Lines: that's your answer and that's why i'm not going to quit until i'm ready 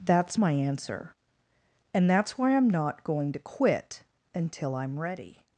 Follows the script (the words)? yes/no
no